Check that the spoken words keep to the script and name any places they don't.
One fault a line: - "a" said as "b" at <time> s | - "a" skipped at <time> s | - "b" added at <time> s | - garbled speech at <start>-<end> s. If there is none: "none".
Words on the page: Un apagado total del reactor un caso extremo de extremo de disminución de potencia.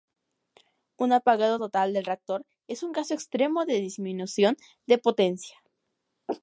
- "es" added at 2.7 s
- "extremo de" skipped at 3.8 s